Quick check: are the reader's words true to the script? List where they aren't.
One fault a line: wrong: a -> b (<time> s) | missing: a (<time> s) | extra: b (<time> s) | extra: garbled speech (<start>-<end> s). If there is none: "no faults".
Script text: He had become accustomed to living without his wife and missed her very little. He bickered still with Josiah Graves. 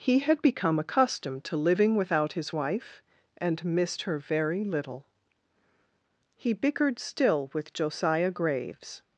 no faults